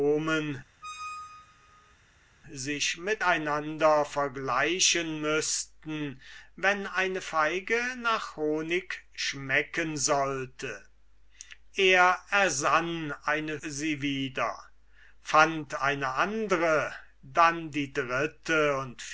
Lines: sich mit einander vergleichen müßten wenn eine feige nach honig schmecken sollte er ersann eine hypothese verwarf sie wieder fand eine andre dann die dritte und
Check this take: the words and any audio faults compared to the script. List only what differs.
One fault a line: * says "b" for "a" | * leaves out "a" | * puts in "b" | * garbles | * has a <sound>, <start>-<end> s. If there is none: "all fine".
* has a squeak, 0.8-2.0 s
* leaves out "hypothese verwarf"